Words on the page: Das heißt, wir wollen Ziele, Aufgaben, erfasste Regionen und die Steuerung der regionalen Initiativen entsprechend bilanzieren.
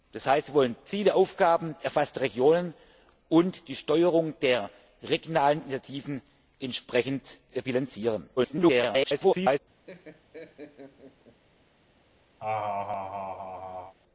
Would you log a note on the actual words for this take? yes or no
yes